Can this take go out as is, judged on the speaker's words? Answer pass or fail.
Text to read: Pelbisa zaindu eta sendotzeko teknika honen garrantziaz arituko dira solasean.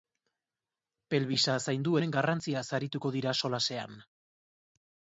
fail